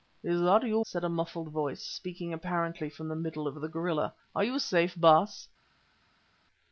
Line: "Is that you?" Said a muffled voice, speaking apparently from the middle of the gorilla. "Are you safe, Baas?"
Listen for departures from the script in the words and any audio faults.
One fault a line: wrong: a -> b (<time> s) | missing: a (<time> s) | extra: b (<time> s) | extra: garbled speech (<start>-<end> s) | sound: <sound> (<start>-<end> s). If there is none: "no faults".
no faults